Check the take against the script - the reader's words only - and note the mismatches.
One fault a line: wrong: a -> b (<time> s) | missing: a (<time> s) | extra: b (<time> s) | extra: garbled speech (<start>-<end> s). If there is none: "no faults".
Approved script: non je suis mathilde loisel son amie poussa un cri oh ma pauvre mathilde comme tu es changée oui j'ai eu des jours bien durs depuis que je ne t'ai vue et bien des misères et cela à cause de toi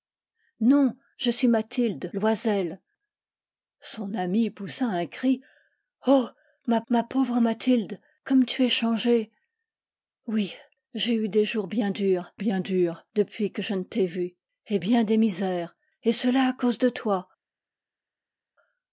extra: ma (6.9 s)
extra: bien durs (12.3 s)